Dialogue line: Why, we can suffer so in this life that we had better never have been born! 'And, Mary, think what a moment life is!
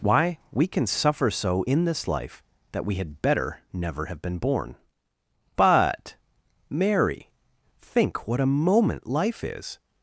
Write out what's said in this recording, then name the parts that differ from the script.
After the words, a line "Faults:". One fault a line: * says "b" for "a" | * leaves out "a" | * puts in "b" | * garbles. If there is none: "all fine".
Why, we can suffer so in this life that we had better never have been born! 'But, Mary, think what a moment life is!
Faults:
* says "But" for "And"